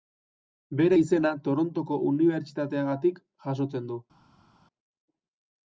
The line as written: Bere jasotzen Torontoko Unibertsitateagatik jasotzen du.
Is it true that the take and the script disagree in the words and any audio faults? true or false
true